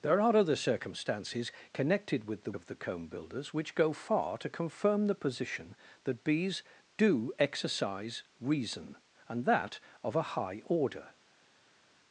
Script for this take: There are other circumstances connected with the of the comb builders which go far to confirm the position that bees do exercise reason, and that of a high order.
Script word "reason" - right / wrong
right